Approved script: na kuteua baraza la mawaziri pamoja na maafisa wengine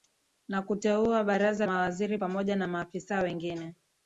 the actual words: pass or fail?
fail